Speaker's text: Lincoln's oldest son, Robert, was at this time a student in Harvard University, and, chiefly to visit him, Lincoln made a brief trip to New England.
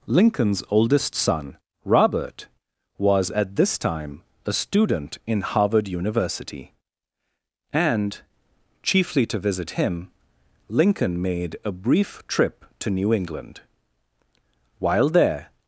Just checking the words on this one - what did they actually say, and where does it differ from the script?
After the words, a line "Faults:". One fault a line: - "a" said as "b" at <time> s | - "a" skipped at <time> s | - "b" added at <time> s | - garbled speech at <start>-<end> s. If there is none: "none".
Lincoln's oldest son, Robert, was at this time a student in Harvard University, and, chiefly to visit him, Lincoln made a brief trip to New England. While there
Faults:
- "While there" added at 14.8 s